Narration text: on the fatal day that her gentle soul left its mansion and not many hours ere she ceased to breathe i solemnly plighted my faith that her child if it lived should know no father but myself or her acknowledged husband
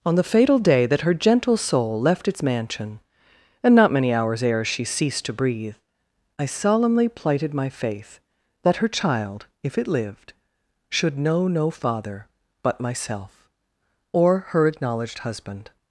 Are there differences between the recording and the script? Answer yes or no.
no